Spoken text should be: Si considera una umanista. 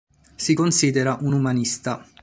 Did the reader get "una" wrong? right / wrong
wrong